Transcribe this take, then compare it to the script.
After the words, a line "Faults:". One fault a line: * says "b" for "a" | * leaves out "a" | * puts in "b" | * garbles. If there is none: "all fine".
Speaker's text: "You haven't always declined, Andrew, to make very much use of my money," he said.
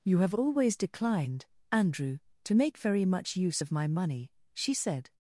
"You have always declined, Andrew, to make very much use of my money," she said.
Faults:
* says "have" for "haven't"
* says "she" for "he"